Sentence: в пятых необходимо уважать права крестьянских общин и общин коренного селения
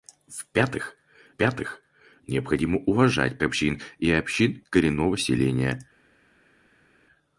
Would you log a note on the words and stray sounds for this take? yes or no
yes